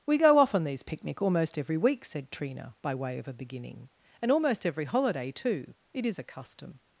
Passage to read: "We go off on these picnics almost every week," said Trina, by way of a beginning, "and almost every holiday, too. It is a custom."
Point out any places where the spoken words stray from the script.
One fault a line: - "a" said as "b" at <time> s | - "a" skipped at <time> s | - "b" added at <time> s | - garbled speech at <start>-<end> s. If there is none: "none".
- "picnics" said as "picnic" at 0.8 s